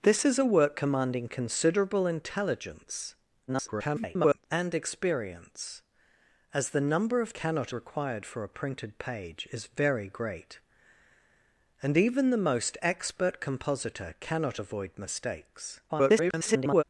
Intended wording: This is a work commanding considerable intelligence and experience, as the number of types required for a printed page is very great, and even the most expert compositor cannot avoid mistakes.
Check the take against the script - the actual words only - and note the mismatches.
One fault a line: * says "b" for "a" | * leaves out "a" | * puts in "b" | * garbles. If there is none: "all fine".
* garbles
* says "cannot" for "types"
* garbles